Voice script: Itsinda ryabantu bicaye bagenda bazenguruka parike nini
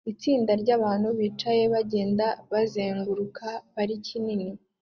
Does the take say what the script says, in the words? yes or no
yes